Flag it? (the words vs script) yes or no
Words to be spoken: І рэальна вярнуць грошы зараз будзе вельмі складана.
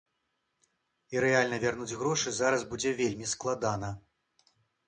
no